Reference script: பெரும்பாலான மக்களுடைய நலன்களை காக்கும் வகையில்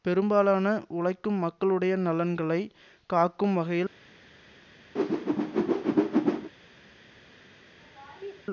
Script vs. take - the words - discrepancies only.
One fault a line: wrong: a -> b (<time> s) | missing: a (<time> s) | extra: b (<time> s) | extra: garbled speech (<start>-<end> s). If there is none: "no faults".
extra: உழைக்கும் (0.9 s)